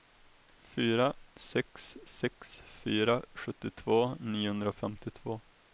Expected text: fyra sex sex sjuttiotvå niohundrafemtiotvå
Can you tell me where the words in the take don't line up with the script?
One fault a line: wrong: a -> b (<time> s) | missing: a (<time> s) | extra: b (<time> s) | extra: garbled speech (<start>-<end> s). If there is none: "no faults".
extra: fyra (2.8 s)